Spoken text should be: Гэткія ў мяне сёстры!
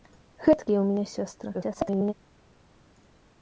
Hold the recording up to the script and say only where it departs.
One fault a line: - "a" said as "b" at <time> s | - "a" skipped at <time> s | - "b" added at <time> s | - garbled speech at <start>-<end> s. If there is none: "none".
- garbled speech at 1.5-2.1 s